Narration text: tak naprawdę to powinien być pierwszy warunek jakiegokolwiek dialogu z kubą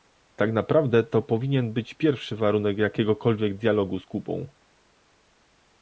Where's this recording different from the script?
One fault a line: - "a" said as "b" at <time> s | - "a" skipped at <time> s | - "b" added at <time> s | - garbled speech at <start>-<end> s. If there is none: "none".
none